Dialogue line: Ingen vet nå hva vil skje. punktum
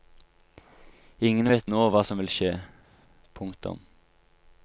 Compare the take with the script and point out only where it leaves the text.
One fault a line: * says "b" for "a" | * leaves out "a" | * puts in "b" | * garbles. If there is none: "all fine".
* puts in "som"